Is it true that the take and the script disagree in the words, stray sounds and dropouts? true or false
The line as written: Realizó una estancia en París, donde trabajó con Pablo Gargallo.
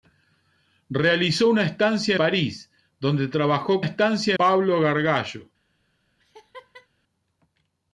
true